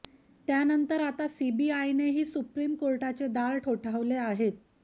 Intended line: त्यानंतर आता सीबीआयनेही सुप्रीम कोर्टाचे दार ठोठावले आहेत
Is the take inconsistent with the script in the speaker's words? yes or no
no